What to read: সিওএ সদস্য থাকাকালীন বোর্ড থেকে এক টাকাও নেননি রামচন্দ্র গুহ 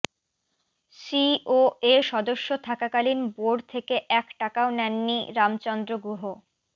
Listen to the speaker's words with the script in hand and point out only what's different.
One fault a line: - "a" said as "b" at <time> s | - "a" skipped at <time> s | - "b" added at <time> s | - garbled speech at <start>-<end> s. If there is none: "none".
none